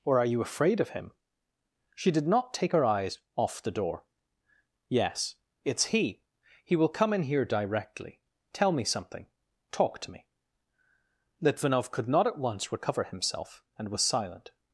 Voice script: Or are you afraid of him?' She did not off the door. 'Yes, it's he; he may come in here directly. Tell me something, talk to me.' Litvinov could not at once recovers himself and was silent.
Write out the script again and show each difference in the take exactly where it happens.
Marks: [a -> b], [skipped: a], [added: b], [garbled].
Or are you afraid of him?' She did not [added: take her eyes] off the door. 'Yes, it's he; he [may -> will] come in here directly. Tell me something, talk to me.' Litvinov could not at once [recovers -> recover] himself and was silent.